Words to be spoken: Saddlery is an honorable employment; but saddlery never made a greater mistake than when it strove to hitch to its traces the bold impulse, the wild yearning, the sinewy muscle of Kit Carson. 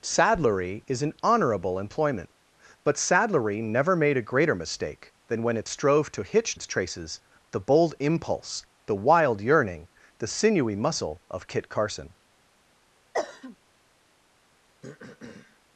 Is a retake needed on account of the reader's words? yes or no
yes